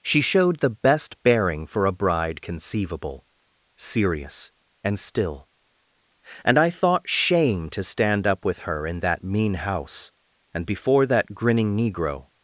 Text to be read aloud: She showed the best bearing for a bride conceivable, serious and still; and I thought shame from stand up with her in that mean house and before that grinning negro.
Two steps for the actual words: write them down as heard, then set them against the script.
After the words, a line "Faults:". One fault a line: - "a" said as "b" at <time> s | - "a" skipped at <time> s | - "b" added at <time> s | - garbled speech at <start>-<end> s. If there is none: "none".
She showed the best bearing for a bride conceivable, serious and still; and I thought shame to stand up with her in that mean house and before that grinning negro.
Faults:
- "from" said as "to" at 7.7 s